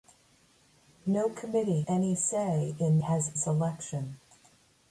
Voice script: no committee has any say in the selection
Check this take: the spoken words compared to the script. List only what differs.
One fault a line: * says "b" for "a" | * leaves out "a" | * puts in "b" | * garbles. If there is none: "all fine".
* leaves out "has"
* says "has" for "the"